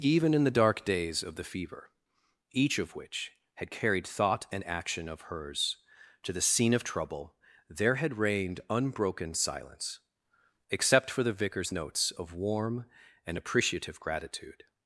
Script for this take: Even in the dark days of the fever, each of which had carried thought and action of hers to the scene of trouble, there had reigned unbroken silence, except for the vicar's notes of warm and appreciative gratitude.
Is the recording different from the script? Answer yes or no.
no